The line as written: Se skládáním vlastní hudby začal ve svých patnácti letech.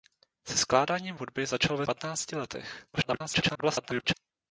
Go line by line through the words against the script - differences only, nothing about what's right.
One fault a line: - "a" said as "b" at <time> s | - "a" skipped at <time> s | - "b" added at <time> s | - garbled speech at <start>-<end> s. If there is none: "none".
- "vlastní" skipped at 1.1 s
- "svých" skipped at 1.9 s
- garbled speech at 2.9-4.1 s